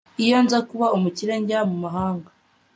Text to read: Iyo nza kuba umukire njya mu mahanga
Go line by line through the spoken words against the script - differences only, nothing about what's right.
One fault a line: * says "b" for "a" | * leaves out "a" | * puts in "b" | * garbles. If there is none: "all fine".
all fine